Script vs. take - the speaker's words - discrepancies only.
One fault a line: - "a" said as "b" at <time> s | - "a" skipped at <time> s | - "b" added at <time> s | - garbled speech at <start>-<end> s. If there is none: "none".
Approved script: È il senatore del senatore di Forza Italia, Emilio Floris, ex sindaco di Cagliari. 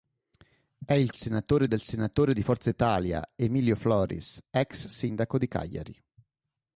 none